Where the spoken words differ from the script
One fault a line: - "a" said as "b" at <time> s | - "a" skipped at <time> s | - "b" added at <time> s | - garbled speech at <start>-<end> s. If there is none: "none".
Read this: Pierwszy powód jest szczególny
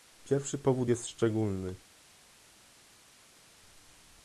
none